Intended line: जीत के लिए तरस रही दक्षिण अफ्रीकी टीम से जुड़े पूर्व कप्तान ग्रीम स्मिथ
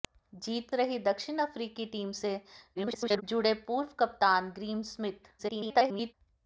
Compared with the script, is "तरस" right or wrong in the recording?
wrong